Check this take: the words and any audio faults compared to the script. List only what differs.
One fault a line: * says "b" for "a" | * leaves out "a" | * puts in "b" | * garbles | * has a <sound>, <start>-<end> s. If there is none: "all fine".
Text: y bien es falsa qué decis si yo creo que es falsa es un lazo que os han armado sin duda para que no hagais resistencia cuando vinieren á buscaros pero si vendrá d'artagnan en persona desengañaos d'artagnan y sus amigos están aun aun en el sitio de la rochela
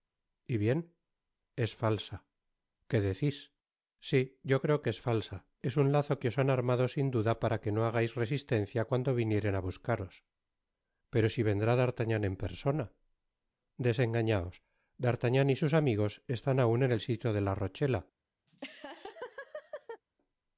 * leaves out "aun"
* has a laugh, 18.5-20.0 s